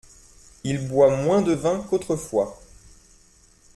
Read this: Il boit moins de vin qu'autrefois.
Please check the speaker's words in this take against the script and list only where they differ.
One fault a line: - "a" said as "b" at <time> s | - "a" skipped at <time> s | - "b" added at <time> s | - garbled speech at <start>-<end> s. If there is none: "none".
none